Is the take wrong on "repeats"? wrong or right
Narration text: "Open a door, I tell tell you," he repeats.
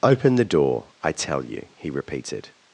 wrong